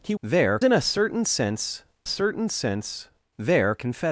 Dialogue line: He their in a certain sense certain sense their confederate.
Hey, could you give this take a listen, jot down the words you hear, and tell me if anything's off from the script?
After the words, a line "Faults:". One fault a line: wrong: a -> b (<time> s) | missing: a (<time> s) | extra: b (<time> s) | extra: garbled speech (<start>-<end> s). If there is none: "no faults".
He their in a certain sense certain sense their confederate.
Faults:
no faults